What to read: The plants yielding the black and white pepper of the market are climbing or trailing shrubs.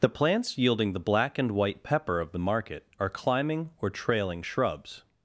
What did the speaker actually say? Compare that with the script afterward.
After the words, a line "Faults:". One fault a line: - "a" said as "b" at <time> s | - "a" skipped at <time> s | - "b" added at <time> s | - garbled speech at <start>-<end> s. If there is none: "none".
The plants yielding the black and white pepper of the market are climbing or trailing shrubs.
Faults:
none